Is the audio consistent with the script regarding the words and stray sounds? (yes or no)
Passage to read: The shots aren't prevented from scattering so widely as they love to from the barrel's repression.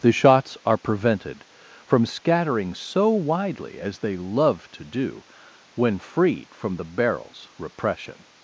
no